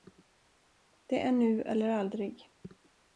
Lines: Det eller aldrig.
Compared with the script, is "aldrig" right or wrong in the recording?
right